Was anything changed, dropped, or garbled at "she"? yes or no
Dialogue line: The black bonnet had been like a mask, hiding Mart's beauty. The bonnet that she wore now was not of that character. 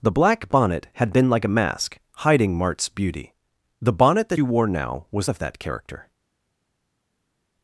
yes